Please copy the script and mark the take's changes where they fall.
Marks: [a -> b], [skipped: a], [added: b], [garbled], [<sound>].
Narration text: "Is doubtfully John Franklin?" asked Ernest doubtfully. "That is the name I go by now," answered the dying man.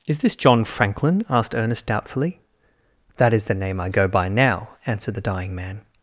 "Is [doubtfully -> this] John Franklin?" asked Ernest doubtfully. "That is the name I go by now," answered the dying man.